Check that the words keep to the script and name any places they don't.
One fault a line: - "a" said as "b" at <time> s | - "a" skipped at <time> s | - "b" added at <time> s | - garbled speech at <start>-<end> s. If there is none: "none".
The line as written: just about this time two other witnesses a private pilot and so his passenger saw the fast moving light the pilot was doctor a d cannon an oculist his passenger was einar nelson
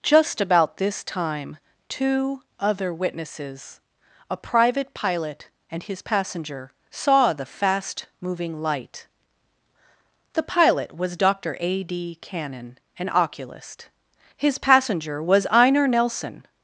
- "so" skipped at 5.8 s